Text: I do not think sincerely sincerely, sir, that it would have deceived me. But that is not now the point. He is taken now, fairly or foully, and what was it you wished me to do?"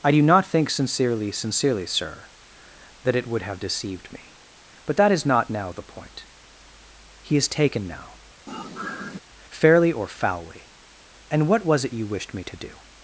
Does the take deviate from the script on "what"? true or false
false